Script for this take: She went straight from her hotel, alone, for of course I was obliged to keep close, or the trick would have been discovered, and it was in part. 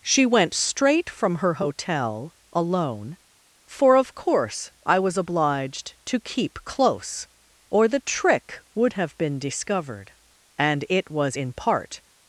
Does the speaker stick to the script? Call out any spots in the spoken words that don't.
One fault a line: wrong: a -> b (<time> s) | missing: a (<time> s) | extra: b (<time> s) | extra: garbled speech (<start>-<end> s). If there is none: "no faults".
no faults